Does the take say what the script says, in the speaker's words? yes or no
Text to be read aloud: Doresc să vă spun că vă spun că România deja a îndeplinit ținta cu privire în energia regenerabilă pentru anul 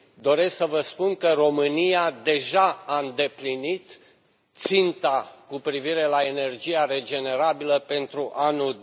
no